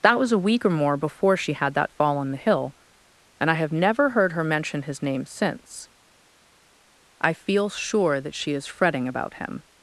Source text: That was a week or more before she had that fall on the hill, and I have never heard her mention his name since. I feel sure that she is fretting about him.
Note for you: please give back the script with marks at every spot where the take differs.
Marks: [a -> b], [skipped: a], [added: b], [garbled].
That was a week or more before she had that fall on the hill, and I have never heard her mention his name since. I feel sure that she is fretting about him.